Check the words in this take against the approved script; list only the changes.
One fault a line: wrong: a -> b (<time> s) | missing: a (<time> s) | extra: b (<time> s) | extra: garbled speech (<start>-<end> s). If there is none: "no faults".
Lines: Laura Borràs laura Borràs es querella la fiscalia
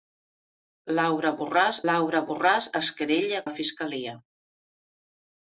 no faults